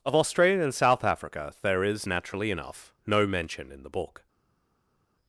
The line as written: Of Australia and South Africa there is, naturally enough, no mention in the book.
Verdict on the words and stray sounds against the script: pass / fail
pass